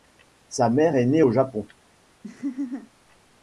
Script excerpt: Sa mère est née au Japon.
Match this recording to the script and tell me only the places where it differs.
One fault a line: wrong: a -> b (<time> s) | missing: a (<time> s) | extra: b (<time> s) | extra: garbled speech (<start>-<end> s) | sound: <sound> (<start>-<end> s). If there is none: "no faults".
sound: laugh (2.2-2.9 s)